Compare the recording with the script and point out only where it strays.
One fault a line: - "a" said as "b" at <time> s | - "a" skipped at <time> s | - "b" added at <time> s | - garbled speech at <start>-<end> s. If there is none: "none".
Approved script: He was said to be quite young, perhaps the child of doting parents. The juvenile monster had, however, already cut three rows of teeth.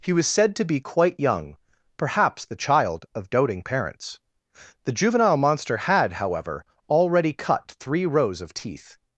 none